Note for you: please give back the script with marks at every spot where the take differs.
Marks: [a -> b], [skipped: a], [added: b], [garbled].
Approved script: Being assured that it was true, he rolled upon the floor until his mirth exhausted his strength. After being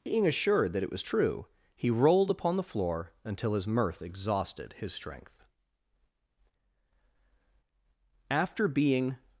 Being assured that it was true, he rolled upon the floor until his mirth exhausted his strength. After being